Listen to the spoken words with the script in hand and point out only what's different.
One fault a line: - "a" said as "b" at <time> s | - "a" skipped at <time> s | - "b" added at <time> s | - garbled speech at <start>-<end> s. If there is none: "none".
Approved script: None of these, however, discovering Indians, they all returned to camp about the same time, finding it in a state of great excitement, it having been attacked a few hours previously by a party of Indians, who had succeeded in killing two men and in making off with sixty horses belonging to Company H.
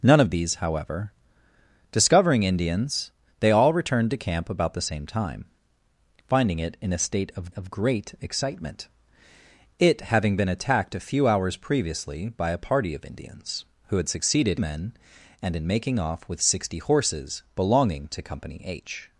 - "of" added at 7.6 s
- "in killing two" skipped at 14.6 s